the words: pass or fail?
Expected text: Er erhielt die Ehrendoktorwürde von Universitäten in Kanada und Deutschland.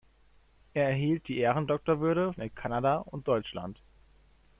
fail